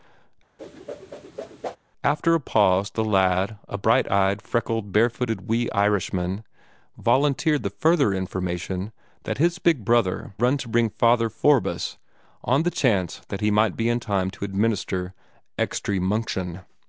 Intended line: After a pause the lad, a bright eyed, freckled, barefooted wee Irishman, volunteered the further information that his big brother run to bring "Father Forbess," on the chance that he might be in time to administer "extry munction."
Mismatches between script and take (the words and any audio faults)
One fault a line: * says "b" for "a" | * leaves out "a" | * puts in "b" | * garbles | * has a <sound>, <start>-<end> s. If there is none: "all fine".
* has a whoosh, 0.6-1.8 s